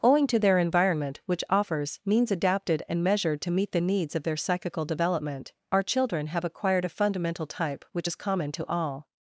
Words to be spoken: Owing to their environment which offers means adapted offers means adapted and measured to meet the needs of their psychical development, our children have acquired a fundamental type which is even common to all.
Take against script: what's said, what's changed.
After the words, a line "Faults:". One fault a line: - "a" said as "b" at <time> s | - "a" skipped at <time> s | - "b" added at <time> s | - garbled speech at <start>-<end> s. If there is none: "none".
Owing to their environment which offers means adapted and measured to meet the needs of their psychical development, our children have acquired a fundamental type which is common to all.
Faults:
- "offers means adapted" skipped at 2.8 s
- "even" skipped at 8.1 s